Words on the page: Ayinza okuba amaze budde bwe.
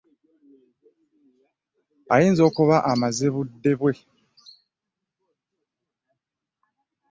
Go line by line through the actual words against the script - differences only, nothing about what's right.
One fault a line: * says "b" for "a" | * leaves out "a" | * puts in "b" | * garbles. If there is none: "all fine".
all fine